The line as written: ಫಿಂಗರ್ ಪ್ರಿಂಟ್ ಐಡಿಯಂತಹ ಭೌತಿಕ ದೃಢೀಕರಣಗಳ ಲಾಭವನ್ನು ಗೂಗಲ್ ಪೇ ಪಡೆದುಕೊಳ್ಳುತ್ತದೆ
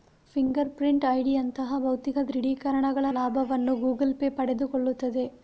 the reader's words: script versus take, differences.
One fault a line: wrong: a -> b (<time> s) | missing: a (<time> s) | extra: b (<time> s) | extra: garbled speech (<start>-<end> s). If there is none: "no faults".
no faults